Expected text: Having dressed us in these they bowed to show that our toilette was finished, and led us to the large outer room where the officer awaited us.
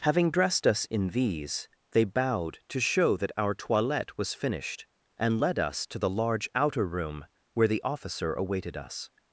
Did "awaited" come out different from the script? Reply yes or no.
no